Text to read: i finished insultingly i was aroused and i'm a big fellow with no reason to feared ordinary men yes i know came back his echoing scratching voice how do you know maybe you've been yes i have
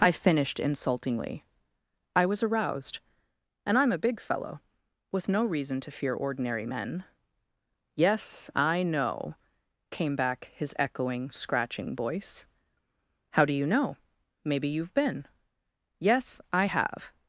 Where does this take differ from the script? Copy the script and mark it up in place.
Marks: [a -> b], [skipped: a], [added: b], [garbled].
i finished insultingly i was aroused and i'm a big fellow with no reason to [feared -> fear] ordinary men yes i know came back his echoing scratching voice how do you know maybe you've been yes i have